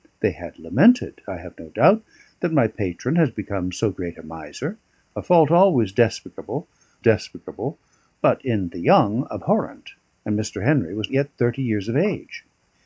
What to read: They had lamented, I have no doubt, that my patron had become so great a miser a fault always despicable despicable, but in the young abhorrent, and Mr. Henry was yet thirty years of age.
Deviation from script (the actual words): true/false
false